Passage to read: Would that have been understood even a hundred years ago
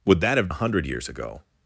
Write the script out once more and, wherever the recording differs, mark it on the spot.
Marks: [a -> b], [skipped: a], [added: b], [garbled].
Would that have [skipped: been understood even] a hundred years ago